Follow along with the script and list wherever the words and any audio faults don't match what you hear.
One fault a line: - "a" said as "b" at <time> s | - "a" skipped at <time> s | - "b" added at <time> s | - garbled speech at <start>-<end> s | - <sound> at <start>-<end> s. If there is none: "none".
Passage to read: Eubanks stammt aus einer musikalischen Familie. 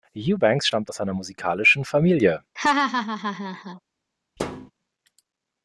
- laugh at 2.6-3.8 s
- thud at 4.4-4.7 s